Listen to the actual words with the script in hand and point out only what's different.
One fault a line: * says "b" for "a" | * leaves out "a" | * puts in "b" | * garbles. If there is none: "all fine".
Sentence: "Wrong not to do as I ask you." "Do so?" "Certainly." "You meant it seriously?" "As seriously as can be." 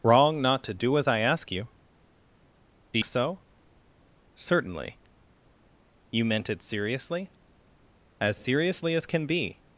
all fine